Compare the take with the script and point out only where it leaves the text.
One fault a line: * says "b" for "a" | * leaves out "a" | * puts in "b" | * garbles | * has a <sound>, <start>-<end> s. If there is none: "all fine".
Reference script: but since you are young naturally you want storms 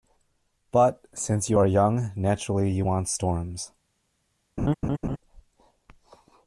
* has a laugh, 4.6-5.2 s